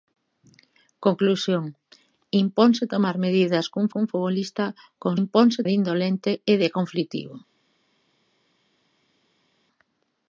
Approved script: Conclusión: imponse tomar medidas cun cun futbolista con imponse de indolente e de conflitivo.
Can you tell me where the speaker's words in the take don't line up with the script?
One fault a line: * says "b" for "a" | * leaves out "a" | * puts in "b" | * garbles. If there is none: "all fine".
all fine